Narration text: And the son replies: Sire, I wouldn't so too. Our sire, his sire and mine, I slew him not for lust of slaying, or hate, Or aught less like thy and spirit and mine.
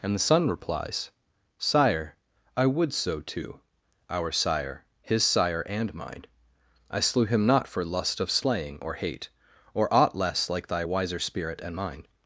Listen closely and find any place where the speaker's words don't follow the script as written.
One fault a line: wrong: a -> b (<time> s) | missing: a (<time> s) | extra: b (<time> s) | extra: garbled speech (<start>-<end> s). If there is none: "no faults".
wrong: wouldn't -> would (2.6 s)
wrong: and -> wiser (10.8 s)